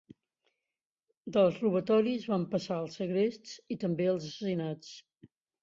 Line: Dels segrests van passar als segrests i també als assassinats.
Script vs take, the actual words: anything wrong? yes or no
yes